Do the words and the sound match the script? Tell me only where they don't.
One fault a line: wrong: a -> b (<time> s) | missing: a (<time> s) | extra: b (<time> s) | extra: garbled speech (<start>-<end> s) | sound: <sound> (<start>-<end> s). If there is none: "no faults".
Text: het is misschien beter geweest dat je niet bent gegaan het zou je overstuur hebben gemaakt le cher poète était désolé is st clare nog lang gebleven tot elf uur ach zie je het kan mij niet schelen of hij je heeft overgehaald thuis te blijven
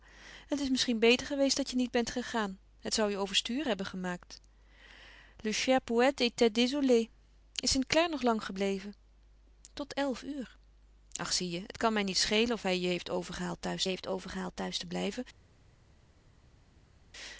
extra: heeft overgehaald thuis (13.9 s)